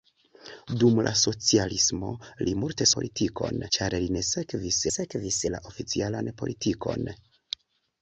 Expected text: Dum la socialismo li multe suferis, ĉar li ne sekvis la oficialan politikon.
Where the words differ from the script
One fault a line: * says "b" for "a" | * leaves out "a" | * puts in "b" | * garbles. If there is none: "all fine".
* says "politikon" for "suferis"
* puts in "sekvis"